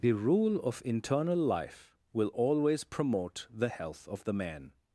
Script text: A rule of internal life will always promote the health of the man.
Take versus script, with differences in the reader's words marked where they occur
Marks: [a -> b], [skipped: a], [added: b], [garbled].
[A -> The] rule of internal life will always promote the health of the man.